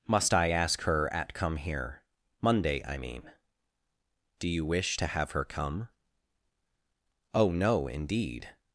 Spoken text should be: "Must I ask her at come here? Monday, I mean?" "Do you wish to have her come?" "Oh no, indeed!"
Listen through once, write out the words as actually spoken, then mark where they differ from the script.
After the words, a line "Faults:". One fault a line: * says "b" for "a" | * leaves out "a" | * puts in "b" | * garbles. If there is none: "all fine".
"Must I ask her at come here? Monday, I mean?" "Do you wish to have her come?" "Oh no, indeed!"
Faults:
all fine